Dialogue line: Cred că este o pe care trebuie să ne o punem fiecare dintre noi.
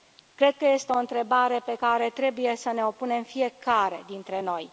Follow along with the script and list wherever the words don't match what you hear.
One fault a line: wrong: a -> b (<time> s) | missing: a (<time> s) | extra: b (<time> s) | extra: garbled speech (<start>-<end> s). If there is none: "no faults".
extra: întrebare (1.0 s)